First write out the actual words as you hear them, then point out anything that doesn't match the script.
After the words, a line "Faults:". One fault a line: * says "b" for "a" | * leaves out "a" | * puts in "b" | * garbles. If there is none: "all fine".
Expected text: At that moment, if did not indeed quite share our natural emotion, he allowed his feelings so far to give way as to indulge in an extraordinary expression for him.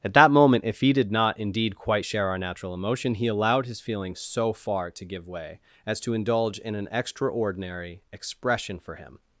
At that moment, if he did not indeed quite share our natural emotion, he allowed his feelings so far to give way as to indulge in an extraordinary expression for him.
Faults:
* puts in "he"